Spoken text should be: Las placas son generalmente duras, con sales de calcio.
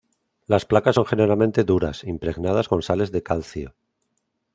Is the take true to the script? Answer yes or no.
no